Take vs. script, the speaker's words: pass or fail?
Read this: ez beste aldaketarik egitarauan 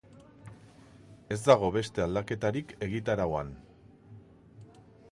fail